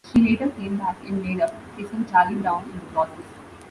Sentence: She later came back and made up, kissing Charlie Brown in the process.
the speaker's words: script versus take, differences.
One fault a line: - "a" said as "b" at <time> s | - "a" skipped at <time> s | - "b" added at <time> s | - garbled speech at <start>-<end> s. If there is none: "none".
none